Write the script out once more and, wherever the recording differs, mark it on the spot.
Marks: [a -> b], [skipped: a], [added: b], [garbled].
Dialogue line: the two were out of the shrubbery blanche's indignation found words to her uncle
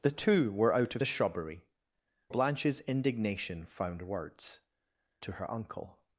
the two were out of the shrubbery blanche's indignation found words to her uncle